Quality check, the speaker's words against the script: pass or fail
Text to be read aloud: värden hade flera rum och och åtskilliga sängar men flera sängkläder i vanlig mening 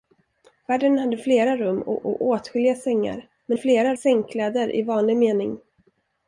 pass